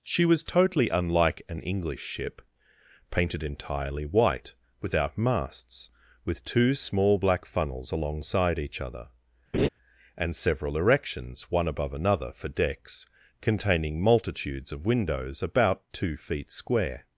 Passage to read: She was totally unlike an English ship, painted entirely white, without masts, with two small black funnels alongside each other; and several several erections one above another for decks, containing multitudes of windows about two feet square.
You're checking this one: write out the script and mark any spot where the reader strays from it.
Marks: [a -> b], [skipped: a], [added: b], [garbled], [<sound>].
She was totally unlike an English ship, painted entirely white, without masts, with two small black funnels alongside each other; [laugh] and several [skipped: several] erections one above another for decks, containing multitudes of windows about two feet square.